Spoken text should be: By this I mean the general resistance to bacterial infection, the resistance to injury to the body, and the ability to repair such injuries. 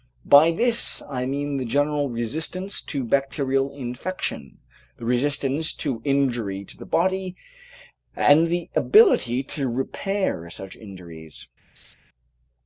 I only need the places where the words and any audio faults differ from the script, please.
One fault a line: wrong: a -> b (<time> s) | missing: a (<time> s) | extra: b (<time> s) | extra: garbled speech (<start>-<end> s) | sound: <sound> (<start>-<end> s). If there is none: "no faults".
sound: laugh (11.8-11.9 s)